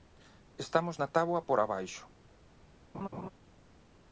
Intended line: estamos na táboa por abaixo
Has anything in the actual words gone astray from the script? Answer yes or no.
no